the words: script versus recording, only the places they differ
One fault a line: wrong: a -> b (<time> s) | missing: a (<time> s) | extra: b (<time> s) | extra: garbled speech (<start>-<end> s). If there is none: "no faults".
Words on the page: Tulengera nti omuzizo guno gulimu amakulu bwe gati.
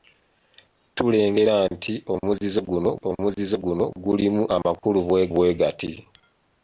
extra: omuzizo guno (3.1 s)
extra: bwe (5.3 s)